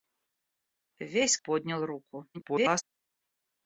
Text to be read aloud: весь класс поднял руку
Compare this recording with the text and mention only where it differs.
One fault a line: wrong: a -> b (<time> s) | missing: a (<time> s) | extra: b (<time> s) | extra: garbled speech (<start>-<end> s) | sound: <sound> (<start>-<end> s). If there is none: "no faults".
missing: класс (1.4 s)
extra: garbled speech (2.3-2.8 s)